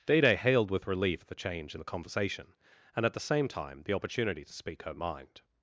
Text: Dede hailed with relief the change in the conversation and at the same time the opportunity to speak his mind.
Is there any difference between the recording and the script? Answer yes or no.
yes